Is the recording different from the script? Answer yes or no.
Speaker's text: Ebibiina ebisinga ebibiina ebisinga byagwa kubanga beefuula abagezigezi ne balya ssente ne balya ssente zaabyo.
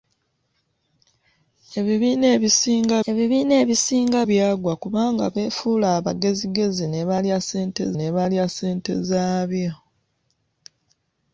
no